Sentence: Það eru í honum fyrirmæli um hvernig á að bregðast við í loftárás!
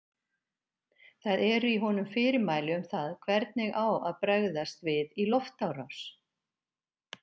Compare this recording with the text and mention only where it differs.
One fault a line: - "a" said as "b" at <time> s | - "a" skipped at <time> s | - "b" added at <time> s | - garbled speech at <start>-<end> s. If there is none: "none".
- "það" added at 3.0 s